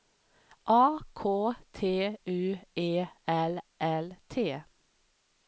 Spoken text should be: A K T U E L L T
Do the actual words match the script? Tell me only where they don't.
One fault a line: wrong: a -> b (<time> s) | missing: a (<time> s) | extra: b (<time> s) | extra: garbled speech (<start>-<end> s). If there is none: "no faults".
no faults